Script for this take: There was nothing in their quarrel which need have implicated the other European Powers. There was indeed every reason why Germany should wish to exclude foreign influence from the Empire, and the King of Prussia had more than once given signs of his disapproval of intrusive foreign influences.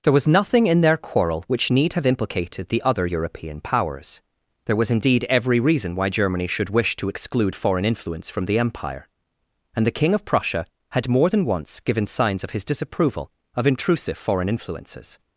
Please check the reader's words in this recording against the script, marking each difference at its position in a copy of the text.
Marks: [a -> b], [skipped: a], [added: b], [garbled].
There was nothing in their quarrel which need have implicated the other European Powers. There was indeed every reason why Germany should wish to exclude foreign influence from the Empire, and the King of Prussia had more than once given signs of his disapproval of intrusive foreign influences.